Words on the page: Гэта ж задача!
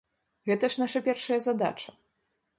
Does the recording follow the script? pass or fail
fail